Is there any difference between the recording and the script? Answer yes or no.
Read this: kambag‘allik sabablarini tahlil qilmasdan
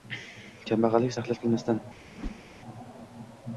yes